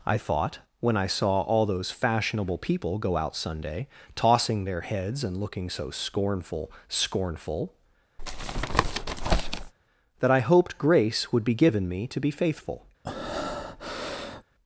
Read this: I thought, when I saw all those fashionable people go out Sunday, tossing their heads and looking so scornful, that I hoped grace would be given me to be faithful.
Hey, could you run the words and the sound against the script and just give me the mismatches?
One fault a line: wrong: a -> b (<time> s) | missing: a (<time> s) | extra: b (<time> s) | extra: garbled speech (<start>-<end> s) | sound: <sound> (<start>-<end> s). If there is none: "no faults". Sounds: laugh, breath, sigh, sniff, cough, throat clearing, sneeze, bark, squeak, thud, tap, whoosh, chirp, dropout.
extra: scornful (6.9 s)
sound: tap (8.2-9.7 s)
sound: breath (13.0-14.4 s)